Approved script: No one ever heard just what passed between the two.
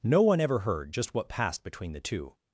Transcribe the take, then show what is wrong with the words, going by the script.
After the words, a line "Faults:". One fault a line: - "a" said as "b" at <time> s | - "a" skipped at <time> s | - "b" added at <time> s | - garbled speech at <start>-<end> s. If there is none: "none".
No one ever heard just what passed between the two.
Faults:
none